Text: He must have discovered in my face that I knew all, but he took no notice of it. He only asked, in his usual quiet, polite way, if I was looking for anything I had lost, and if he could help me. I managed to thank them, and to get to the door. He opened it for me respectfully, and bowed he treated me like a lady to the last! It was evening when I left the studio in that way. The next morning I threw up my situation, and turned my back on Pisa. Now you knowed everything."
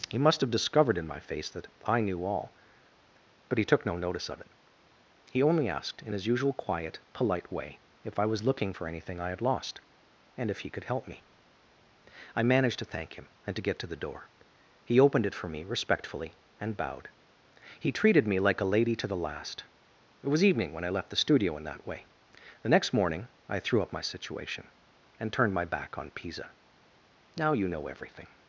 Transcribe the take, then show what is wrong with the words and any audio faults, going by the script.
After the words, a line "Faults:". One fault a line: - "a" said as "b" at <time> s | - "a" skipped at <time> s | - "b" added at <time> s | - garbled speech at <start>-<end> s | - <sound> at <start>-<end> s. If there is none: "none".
He must have discovered in my face that I knew all, but he took no notice of it. He only asked, in his usual quiet, polite way, if I was looking for anything I had lost, and if he could help me. I managed to thank him, and to get to the door. He opened it for me respectfully, and bowed he treated me like a lady to the last! It was evening when I left the studio in that way. The next morning I threw up my situation, and turned my back on Pisa. Now you know everything."
Faults:
- "them" said as "him" at 13.1 s
- "knowed" said as "know" at 27.7 s